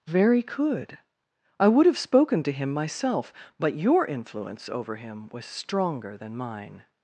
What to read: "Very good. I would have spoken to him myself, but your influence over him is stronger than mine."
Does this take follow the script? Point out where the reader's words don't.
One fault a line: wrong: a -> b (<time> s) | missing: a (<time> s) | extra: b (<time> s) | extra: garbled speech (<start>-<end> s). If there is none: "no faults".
wrong: good -> could (0.4 s)
wrong: is -> was (5.3 s)